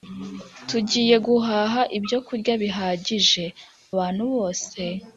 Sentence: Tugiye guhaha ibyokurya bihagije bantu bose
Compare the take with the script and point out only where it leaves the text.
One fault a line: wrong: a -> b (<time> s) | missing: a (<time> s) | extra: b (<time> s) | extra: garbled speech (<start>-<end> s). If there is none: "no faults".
no faults